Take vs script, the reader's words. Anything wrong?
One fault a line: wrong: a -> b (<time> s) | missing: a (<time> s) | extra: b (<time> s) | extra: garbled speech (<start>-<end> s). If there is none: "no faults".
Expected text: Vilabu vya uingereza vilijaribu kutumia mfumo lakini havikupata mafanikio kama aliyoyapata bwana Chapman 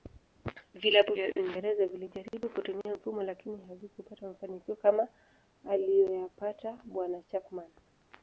no faults